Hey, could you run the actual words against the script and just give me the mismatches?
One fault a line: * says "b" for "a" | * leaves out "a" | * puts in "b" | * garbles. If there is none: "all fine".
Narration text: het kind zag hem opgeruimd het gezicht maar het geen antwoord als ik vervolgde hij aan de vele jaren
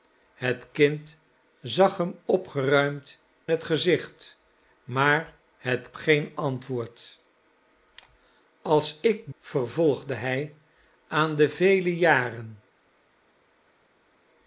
all fine